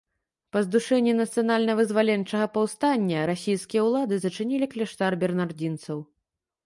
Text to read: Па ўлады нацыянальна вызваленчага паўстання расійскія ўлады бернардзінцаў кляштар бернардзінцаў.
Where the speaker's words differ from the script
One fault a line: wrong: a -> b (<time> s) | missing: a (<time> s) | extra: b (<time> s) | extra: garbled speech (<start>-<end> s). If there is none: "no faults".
wrong: ўлады -> здушэнні (0.7 s)
wrong: бернардзінцаў -> зачынілі (4.3 s)